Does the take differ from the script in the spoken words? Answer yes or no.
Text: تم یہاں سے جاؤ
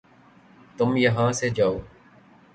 no